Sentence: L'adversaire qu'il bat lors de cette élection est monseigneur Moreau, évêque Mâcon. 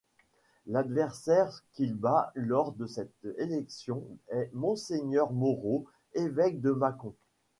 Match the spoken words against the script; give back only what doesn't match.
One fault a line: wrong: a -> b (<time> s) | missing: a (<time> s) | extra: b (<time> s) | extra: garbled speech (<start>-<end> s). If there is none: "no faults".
extra: de (6.6 s)